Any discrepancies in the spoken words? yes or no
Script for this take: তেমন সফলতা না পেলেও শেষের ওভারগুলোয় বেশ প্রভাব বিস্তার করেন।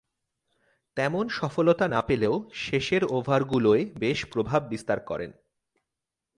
no